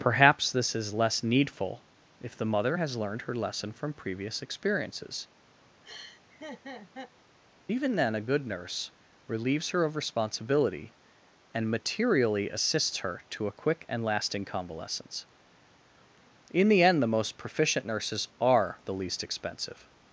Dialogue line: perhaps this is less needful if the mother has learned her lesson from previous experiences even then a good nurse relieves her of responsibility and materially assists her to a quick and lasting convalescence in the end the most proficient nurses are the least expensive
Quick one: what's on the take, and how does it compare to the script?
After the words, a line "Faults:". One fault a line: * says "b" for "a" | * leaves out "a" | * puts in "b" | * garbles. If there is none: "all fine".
perhaps this is less needful if the mother has learned her lesson from previous experiences even then a good nurse relieves her of responsibility and materially assists her to a quick and lasting convalescence in the end the most proficient nurses are the least expensive
Faults:
all fine